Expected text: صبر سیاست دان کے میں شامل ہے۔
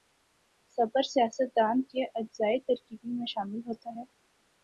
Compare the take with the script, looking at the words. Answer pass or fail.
fail